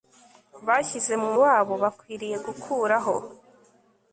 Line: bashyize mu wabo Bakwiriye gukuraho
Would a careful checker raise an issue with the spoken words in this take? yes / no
no